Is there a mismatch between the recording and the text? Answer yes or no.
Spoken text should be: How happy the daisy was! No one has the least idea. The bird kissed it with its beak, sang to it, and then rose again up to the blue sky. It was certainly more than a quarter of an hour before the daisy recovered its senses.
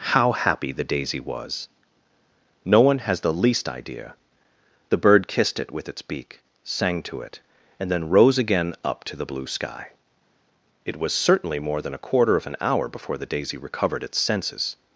no